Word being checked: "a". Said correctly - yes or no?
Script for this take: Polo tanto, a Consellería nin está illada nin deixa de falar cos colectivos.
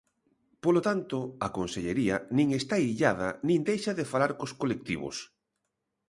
yes